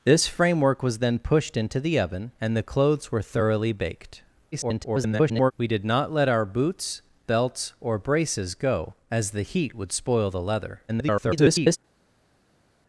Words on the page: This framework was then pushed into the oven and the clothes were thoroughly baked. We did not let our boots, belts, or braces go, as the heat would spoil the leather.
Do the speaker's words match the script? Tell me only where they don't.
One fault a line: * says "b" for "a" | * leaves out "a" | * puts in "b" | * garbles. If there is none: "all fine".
* garbles
* garbles